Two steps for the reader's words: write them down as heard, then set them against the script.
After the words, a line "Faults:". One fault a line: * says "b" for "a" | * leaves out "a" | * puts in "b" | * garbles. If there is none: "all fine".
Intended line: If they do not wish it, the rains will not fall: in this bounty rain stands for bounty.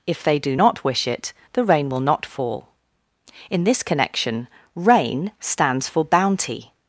If they do not wish it, the rain will not fall: in this connection rain stands for bounty.
Faults:
* says "rain" for "rains"
* says "connection" for "bounty"